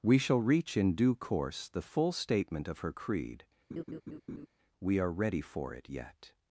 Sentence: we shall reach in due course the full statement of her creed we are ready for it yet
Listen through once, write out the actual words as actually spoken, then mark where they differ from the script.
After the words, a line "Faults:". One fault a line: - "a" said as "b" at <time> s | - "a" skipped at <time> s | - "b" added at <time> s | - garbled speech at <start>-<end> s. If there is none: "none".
we shall reach in due course the full statement of her creed we are ready for it yet
Faults:
none